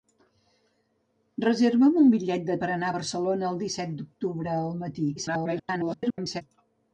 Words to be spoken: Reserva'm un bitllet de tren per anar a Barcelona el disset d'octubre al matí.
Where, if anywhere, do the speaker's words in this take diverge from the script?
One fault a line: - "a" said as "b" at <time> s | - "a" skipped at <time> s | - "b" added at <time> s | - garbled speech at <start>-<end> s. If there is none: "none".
- "tren" skipped at 2.6 s
- garbled speech at 5.2-6.4 s